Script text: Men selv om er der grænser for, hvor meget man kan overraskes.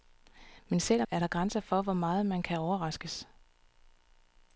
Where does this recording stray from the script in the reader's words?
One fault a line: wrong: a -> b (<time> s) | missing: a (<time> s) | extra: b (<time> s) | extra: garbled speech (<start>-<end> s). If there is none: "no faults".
no faults